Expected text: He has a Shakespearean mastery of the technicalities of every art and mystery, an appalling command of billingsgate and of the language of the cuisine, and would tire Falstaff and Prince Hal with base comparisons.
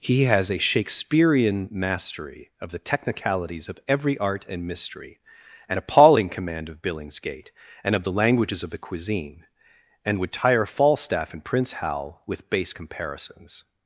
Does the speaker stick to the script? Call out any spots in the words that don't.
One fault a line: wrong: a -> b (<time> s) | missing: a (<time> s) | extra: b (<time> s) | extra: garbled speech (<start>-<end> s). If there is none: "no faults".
wrong: language -> languages (8.1 s)